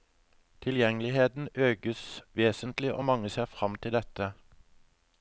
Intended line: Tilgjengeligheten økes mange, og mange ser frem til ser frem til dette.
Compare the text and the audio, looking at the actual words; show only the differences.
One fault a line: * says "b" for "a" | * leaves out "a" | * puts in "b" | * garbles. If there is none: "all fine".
* says "vesentlig" for "mange"
* leaves out "ser frem til"